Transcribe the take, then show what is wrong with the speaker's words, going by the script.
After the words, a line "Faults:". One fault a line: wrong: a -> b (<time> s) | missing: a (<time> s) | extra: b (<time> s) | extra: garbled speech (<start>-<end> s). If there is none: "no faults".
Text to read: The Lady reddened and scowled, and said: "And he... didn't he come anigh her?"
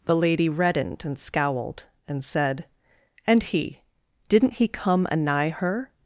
The Lady reddened and scowled, and said: "And he... didn't he come anigh her?"
Faults:
no faults